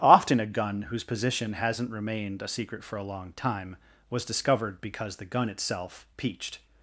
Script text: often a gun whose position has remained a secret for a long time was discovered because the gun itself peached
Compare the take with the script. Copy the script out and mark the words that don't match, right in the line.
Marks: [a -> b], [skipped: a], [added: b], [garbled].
often a gun whose position [has -> hasn't] remained a secret for a long time was discovered because the gun itself peached